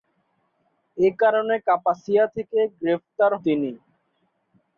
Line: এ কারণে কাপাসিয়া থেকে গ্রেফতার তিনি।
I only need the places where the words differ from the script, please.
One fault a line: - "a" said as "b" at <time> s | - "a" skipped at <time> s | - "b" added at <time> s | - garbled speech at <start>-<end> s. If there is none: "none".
none